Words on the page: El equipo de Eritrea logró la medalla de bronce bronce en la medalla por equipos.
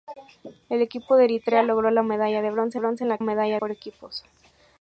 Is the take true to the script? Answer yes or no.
yes